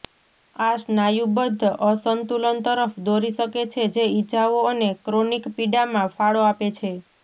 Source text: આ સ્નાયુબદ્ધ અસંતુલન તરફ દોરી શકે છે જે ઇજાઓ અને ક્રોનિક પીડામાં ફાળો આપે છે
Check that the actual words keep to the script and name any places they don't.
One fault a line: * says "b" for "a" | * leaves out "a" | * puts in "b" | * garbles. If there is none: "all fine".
all fine